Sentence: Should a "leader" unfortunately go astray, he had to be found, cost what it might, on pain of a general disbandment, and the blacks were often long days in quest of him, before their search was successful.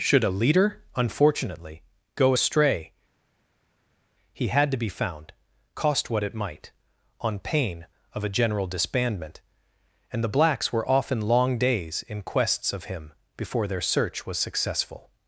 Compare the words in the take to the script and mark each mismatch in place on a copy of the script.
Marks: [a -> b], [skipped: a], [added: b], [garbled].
Should a "leader" unfortunately go astray, he had to be found, cost what it might, on pain of a general disbandment, and the blacks were often long days in [quest -> quests] of him, before their search was successful.